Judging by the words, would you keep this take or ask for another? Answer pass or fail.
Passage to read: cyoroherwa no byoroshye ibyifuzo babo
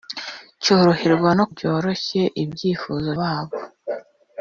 pass